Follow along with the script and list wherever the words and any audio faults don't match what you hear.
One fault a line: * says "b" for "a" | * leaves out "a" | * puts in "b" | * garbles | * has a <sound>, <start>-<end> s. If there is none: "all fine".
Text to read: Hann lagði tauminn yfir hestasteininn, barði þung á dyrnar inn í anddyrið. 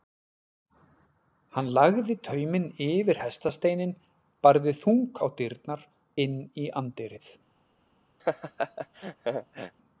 * has a laugh, 8.2-9.7 s